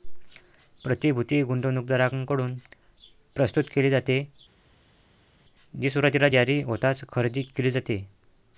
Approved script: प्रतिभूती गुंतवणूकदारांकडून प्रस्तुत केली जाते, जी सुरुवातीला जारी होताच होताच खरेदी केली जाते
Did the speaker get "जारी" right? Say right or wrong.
right